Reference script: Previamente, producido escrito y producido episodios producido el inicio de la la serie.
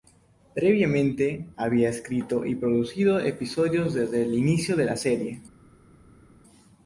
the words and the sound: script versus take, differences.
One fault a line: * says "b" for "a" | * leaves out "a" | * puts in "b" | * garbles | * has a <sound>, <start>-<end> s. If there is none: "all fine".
* says "había" for "producido"
* says "desde" for "producido"
* leaves out "la"